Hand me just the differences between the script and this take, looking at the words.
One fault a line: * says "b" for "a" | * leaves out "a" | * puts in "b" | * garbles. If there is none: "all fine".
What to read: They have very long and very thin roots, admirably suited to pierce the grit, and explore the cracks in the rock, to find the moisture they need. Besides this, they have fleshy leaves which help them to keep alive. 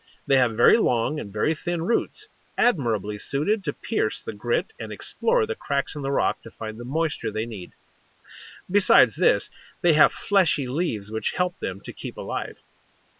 all fine